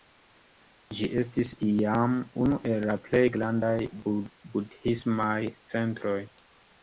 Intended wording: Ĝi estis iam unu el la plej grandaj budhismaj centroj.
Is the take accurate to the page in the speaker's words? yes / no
yes